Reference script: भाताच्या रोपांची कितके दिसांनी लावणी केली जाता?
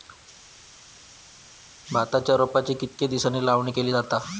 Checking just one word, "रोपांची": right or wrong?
right